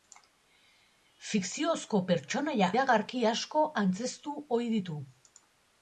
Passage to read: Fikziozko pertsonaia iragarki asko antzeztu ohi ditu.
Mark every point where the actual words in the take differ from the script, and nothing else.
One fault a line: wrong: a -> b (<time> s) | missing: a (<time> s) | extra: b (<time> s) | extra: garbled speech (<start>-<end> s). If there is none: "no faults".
no faults